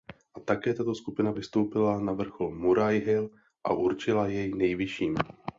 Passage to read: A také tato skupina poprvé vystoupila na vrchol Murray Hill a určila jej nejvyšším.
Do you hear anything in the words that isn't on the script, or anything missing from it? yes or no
yes